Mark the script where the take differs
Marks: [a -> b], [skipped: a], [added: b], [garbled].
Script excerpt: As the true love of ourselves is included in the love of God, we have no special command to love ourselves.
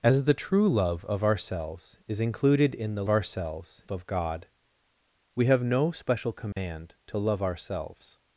As the true love of ourselves is included in the [love -> ourselves] of God, we have no special command to love ourselves.